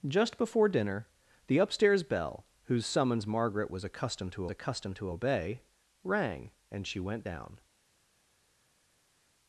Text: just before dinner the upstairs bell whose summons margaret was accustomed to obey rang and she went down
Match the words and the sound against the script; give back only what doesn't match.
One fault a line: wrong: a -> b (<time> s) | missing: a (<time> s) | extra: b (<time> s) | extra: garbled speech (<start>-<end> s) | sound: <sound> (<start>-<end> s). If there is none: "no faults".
extra: accustomed to (4.5 s)